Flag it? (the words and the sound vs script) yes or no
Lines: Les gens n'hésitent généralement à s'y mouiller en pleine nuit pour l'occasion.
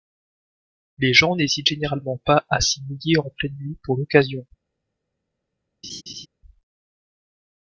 yes